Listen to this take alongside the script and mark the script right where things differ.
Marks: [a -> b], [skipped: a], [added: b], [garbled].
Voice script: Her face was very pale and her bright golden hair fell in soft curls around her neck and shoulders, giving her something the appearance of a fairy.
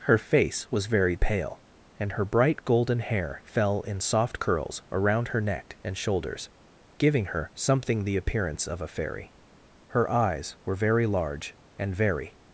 Her face was very pale and her bright golden hair fell in soft curls around her neck and shoulders, giving her something the appearance of a fairy. [added: Her eyes were very large and very]